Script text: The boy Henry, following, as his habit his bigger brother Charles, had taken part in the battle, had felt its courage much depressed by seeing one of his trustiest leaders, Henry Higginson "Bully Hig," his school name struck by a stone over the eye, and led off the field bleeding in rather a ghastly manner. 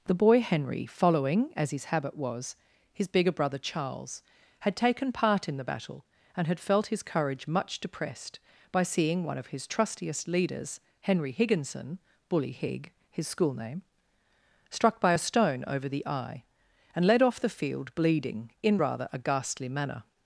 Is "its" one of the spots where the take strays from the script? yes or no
yes